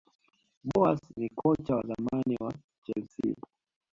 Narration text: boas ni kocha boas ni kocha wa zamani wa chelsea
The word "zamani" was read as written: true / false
true